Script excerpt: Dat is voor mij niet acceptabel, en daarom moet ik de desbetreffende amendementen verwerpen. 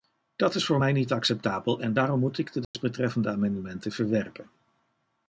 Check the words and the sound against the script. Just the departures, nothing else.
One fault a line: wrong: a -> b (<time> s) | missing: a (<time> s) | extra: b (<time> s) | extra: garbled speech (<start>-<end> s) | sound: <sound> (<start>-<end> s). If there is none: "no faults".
sound: dropout (2.6-2.7 s)